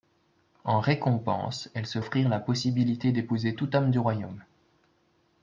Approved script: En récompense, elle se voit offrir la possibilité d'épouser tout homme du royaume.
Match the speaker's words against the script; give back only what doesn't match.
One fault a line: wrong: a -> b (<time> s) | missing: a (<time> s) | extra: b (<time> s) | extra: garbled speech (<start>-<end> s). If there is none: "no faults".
missing: voit (2.0 s)